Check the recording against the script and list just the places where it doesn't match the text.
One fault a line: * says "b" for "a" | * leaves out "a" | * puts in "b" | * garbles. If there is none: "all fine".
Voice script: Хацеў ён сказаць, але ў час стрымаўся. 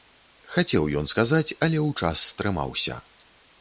all fine